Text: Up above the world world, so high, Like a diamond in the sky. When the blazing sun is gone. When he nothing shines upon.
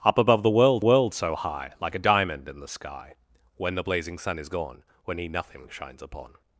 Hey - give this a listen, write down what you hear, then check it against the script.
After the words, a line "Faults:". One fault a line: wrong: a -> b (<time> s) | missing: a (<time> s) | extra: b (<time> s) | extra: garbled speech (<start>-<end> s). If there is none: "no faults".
Up above the world world, so high, Like a diamond in the sky. When the blazing sun is gone. When he nothing shines upon.
Faults:
no faults